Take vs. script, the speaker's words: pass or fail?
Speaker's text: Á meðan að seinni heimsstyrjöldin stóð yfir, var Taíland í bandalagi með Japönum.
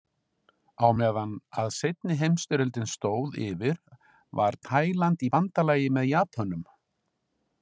pass